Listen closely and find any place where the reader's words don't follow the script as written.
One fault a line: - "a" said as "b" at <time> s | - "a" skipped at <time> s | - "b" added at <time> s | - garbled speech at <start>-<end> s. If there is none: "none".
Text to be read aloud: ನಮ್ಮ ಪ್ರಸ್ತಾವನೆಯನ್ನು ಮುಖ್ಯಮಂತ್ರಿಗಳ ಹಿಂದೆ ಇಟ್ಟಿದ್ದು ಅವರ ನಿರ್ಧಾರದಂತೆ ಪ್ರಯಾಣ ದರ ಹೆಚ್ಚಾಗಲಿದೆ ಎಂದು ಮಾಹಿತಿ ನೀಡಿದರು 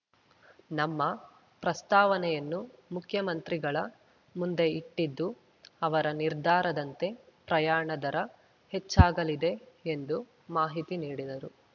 - "ಹಿಂದೆ" said as "ಮುಂದೆ" at 4.3 s